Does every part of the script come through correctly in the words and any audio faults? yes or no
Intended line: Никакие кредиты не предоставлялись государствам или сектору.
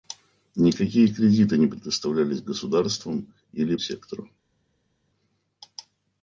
yes